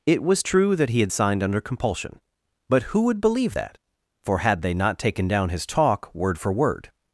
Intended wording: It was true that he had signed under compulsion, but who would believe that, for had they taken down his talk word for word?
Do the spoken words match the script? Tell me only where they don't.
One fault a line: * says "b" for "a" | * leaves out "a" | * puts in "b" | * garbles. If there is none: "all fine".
* puts in "not"